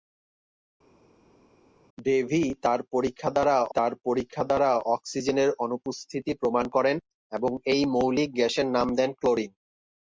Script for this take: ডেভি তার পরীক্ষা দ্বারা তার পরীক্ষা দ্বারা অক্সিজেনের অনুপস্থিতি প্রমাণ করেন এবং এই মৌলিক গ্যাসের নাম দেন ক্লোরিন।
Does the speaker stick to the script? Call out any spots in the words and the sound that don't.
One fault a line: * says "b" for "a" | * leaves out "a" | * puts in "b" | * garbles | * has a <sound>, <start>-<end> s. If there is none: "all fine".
all fine